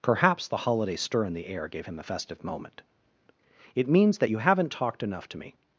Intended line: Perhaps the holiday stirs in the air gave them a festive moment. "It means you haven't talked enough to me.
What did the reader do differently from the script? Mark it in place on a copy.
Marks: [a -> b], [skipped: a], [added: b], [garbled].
Perhaps the holiday [stirs -> stir] in the air gave [them -> him] a festive moment. "It means [added: that] you haven't talked enough to me.